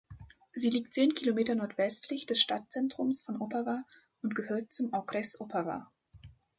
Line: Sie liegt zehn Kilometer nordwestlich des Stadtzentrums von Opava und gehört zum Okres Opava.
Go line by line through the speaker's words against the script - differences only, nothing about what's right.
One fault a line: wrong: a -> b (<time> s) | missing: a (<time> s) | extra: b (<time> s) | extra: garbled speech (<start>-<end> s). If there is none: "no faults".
no faults